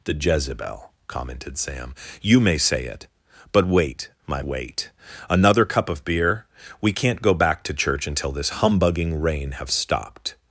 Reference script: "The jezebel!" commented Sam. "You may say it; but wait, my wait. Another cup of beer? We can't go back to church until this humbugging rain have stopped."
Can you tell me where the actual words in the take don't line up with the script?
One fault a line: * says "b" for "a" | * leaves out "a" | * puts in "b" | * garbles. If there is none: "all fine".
all fine